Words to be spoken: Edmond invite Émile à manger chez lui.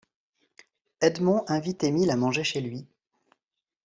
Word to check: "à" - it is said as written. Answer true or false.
true